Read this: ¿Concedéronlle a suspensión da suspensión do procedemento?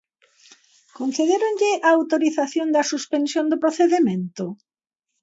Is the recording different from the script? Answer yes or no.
yes